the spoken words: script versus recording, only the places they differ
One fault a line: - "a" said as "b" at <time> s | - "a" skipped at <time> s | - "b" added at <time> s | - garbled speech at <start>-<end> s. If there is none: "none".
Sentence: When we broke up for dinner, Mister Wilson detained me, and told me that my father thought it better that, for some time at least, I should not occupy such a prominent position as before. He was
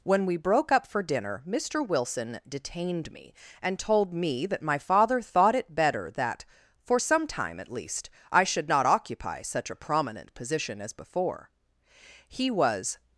none